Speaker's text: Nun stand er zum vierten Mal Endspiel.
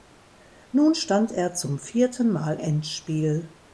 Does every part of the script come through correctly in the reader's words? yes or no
yes